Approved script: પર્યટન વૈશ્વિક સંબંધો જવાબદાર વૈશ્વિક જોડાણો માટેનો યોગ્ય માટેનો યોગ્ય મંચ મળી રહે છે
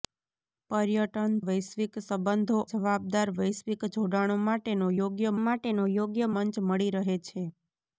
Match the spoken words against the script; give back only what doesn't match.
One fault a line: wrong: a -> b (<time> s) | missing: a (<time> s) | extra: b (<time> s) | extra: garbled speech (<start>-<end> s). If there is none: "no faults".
no faults